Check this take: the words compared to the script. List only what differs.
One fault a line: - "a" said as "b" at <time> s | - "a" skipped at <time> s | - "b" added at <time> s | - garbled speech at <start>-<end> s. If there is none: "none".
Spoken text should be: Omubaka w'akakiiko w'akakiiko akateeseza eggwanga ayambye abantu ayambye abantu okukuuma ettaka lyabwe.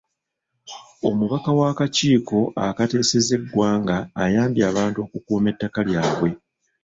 - "w'akakiiko" skipped at 2.4 s
- "ayambye abantu" skipped at 5.0 s